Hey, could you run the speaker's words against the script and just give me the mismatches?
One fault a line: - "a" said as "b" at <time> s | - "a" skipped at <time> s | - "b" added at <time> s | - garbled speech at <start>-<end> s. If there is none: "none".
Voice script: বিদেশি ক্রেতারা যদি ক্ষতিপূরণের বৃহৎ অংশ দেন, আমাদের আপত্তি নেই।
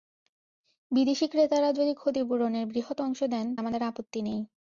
none